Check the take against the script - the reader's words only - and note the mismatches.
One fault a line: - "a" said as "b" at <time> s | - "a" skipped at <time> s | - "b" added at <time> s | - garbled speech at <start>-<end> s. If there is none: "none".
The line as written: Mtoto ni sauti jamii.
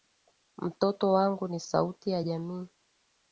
- "wangu" added at 1.1 s
- "ya" added at 2.1 s